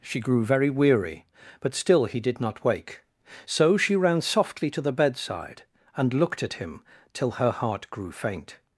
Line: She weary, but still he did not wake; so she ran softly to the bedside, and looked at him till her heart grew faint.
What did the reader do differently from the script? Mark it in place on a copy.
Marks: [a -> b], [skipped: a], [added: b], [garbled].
She [added: grew very] weary, but still he did not wake; so she ran softly to the bedside, and looked at him till her heart grew faint.